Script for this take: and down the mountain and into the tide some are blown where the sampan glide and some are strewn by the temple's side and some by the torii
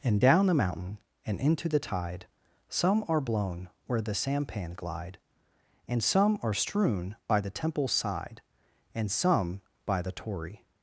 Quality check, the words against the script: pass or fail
pass